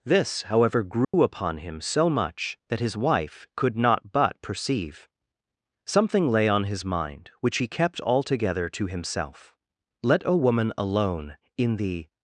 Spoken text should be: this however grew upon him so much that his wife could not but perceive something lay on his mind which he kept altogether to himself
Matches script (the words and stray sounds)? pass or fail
fail